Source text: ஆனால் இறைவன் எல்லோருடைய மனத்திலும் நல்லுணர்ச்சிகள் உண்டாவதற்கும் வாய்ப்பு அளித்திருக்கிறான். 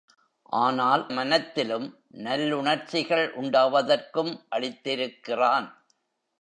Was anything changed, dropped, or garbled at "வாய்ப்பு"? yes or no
yes